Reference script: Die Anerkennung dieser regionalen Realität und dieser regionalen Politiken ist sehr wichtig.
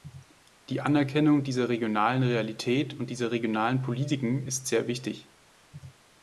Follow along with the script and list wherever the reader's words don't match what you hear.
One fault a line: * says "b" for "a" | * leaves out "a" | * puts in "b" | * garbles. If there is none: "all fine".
all fine